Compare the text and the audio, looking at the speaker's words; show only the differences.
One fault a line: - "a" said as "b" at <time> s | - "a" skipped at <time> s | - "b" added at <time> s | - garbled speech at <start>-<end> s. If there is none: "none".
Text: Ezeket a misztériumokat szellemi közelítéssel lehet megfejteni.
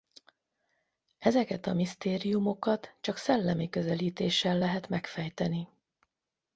- "csak" added at 3.0 s